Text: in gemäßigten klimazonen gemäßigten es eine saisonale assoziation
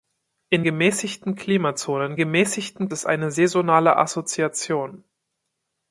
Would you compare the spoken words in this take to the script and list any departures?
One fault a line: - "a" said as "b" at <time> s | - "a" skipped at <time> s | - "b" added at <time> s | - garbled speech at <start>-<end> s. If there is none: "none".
none